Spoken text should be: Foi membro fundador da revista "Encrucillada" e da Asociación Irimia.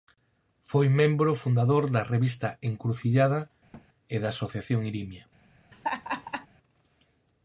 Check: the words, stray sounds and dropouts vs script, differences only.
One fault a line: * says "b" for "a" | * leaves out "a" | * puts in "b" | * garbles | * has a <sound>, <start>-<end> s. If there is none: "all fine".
* has a thud, 3.7-3.9 s
* has a laugh, 5.7-6.5 s